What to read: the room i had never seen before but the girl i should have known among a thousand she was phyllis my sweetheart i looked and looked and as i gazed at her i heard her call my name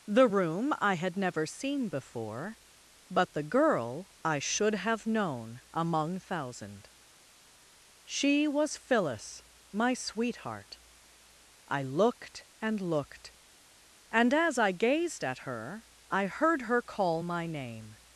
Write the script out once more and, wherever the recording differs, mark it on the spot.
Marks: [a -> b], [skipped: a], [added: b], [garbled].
the room i had never seen before but the girl i should have known among [skipped: a] thousand she was phyllis my sweetheart i looked and looked and as i gazed at her i heard her call my name